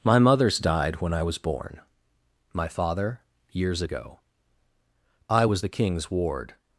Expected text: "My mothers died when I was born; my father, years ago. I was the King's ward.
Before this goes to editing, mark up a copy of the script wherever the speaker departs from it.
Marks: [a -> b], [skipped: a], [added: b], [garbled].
"My mothers died when I was born; my father, years ago. I was the King's ward.